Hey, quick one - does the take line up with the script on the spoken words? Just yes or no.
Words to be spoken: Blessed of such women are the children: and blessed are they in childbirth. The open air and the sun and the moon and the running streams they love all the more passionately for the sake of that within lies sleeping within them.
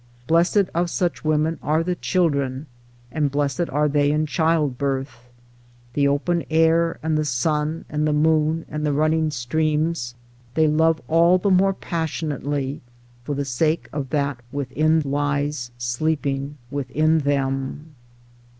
yes